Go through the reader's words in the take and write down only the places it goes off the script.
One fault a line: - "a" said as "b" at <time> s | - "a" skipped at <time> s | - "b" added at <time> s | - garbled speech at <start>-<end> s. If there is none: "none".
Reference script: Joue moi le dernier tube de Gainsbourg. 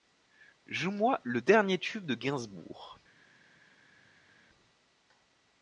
none